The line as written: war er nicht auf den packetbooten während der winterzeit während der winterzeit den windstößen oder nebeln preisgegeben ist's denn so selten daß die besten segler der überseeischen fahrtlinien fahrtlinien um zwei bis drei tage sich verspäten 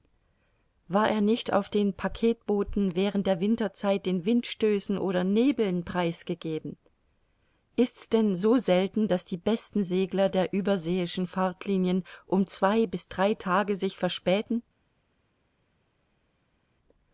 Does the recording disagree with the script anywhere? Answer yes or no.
yes